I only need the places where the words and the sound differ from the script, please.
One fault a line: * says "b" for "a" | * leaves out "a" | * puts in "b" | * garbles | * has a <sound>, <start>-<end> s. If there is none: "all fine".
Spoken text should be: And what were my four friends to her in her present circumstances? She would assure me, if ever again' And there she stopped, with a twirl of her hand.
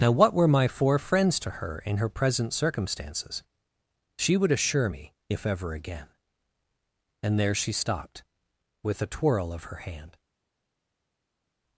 * says "Now" for "And"